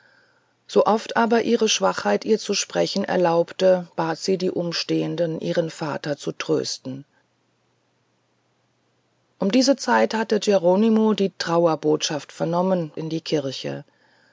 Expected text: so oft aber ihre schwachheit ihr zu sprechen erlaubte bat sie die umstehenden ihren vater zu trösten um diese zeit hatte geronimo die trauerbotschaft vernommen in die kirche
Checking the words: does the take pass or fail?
pass